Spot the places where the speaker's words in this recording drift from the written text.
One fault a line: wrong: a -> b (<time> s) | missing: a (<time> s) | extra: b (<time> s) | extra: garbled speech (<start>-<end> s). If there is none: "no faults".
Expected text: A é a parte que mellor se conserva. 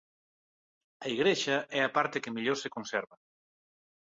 extra: igrexa (1.1 s)